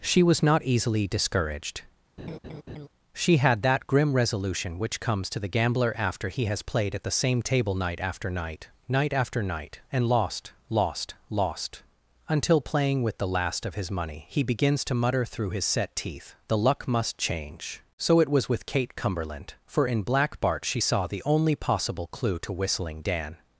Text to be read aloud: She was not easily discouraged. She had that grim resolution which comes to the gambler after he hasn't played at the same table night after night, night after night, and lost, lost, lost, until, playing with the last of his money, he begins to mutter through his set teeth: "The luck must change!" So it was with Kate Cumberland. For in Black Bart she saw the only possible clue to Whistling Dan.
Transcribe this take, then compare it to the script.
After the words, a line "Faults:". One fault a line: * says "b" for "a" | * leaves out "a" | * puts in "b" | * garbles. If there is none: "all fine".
She was not easily discouraged. She had that grim resolution which comes to the gambler after he has played at the same table night after night, night after night, and lost, lost, lost, until, playing with the last of his money, he begins to mutter through his set teeth: "The luck must change!" So it was with Kate Cumberland. For in Black Bart she saw the only possible clue to Whistling Dan.
Faults:
* says "has" for "hasn't"